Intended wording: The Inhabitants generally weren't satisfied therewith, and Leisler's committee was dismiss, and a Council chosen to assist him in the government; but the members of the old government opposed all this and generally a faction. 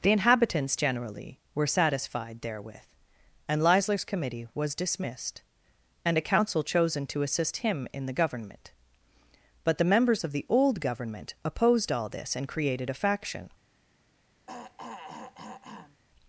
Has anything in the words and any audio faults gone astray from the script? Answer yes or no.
yes